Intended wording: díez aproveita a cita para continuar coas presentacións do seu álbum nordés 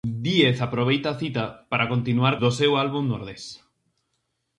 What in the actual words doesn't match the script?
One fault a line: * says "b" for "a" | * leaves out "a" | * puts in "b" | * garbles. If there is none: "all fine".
* leaves out "coas presentacións"